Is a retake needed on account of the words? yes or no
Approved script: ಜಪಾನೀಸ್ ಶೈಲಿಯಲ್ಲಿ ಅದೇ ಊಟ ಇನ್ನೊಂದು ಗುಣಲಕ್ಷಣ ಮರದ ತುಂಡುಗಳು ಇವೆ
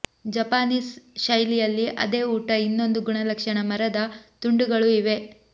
no